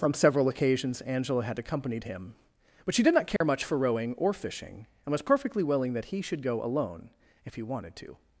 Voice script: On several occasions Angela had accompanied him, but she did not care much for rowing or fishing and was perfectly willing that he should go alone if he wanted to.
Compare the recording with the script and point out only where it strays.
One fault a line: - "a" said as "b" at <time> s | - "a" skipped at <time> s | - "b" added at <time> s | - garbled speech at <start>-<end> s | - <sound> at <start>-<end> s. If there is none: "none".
- "On" said as "From" at 0.0 s
- dropout at 3.4-3.4 s